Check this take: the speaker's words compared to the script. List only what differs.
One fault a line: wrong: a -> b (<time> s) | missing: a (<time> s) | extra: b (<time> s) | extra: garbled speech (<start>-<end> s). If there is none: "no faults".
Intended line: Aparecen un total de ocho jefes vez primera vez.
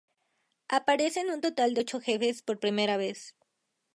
wrong: vez -> por (2.4 s)